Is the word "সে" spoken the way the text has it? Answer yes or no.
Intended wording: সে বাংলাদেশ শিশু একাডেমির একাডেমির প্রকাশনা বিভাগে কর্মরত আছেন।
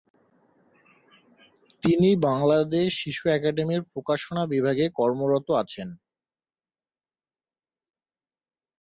no